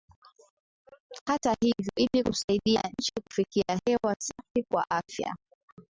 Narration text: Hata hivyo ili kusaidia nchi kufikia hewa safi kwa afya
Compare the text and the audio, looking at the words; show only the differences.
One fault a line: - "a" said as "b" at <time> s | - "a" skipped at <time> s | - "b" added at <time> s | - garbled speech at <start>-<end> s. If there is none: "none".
none